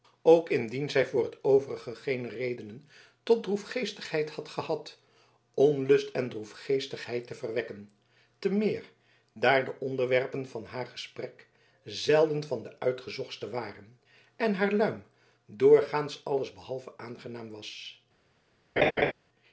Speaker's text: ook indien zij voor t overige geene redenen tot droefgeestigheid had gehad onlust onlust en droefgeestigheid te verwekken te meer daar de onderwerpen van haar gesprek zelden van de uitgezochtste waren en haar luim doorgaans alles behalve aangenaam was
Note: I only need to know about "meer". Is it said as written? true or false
true